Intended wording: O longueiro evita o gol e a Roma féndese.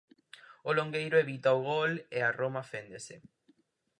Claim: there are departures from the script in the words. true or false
false